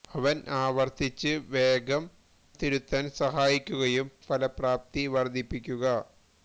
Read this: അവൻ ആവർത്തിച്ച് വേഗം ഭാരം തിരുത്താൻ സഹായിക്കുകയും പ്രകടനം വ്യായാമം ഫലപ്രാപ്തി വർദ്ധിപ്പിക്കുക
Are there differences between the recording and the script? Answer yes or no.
yes